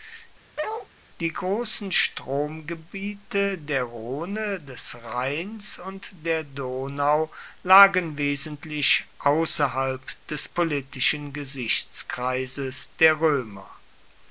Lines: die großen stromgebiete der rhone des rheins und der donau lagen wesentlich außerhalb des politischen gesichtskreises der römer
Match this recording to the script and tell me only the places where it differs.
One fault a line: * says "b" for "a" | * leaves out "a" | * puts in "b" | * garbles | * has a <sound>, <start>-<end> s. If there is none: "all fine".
* has a bark, 0.6-0.9 s